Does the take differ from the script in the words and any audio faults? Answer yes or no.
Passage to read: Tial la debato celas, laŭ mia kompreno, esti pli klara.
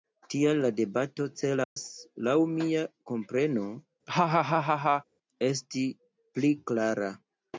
yes